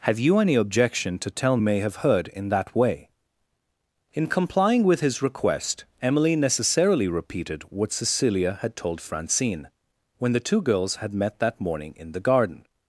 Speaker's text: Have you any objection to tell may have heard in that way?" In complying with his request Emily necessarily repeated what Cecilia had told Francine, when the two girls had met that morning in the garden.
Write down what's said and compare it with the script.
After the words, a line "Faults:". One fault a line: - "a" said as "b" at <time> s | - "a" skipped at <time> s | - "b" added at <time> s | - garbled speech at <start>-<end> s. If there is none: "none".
Have you any objection to tell may have heard in that way?" In complying with his request Emily necessarily repeated what Cecilia had told Francine, when the two girls had met that morning in the garden.
Faults:
none